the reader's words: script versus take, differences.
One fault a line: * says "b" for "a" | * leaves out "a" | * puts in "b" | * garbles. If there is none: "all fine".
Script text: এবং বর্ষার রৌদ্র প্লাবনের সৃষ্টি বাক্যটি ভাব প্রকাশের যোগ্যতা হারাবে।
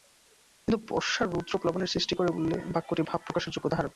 * says "কিন্তু" for "এবং"
* puts in "করে বললে"